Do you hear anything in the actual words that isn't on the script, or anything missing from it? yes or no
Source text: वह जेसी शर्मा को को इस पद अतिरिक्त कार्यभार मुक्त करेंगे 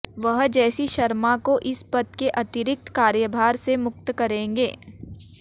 yes